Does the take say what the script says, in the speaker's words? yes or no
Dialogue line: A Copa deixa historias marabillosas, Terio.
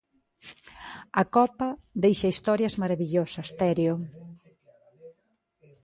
yes